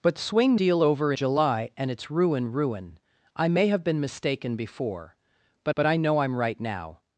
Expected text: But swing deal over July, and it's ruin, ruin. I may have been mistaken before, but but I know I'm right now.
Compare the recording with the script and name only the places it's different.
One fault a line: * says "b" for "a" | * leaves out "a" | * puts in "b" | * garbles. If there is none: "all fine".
all fine